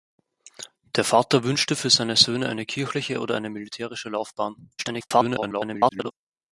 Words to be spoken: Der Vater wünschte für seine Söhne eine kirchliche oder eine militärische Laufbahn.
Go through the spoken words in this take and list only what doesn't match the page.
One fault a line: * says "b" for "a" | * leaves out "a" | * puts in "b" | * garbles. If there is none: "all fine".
* garbles